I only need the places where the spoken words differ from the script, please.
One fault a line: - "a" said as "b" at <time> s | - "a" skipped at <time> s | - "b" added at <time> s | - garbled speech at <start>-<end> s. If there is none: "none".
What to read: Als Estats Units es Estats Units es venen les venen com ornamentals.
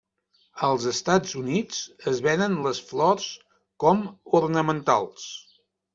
- "Estats Units es" skipped at 2.2 s
- "venen" said as "flors" at 2.9 s